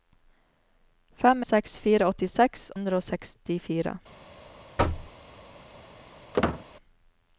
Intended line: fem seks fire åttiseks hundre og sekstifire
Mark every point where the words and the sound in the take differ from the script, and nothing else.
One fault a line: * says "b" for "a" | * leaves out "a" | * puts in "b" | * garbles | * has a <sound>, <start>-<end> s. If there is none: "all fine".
* has a thud, 4.8-5.1 s
* has a squeak, 6.3-6.6 s